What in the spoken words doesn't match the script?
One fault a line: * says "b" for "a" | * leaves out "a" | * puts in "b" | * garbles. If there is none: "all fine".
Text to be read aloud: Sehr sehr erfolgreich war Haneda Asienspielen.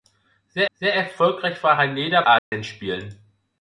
all fine